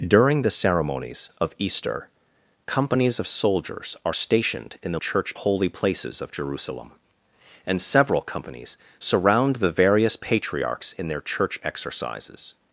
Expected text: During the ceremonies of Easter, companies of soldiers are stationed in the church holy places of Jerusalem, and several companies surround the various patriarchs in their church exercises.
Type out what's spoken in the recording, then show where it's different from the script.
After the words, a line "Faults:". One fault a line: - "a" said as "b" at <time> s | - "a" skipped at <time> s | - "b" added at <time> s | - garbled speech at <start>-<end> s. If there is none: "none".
During the ceremonies of Easter, companies of soldiers are stationed in the church holy places of Jerusalem, and several companies surround the various patriarchs in their church exercises.
Faults:
none